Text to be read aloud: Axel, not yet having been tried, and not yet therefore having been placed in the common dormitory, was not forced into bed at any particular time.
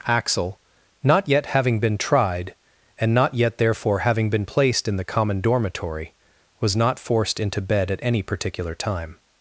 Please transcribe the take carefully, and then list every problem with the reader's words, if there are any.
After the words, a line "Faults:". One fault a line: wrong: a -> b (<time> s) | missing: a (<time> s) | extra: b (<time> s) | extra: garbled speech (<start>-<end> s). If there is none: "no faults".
Axel, not yet having been tried, and not yet therefore having been placed in the common dormitory, was not forced into bed at any particular time.
Faults:
no faults